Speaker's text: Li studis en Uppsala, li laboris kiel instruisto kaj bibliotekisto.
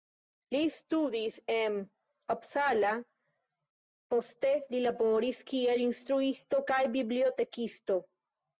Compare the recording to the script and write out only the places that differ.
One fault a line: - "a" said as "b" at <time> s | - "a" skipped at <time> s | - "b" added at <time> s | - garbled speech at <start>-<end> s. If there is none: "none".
- "poste" added at 4.1 s